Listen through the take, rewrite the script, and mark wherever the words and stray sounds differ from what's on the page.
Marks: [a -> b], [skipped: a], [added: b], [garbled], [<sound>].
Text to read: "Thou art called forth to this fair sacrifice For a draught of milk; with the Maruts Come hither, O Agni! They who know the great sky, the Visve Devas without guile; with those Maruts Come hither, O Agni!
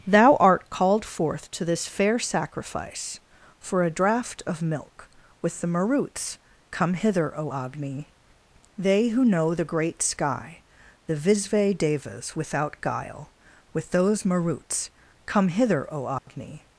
"Thou art called forth to this fair sacrifice For a draught of milk; with the Maruts Come hither, O Agni! They who know the great sky, the Visve Devas without guile; with those Maruts Come hither, O Agni! [dropout]